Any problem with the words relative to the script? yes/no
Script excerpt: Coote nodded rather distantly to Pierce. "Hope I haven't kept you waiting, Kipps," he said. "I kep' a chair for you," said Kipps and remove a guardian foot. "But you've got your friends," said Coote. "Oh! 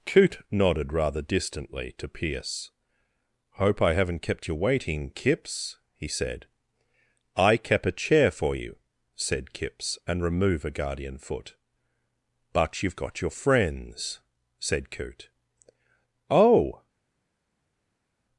no